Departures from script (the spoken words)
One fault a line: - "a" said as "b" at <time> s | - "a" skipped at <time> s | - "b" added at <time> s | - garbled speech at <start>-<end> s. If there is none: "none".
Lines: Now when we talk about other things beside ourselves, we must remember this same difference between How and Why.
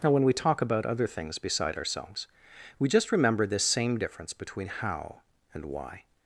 - "must" said as "just" at 2.9 s